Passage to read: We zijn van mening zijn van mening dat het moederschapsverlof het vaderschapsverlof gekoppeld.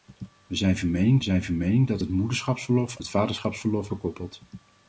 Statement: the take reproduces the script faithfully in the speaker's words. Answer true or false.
true